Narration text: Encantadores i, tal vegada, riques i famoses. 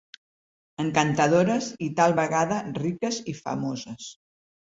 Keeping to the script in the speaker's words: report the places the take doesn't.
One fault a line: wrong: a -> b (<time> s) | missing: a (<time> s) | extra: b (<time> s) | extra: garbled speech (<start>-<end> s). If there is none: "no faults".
no faults